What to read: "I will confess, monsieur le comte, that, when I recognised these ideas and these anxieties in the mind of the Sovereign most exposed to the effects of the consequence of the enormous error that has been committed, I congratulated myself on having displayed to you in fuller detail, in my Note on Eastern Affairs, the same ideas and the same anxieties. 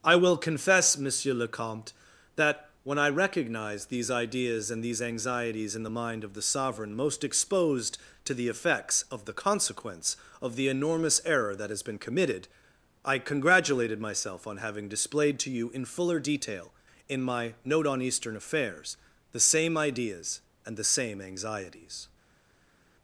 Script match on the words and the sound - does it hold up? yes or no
no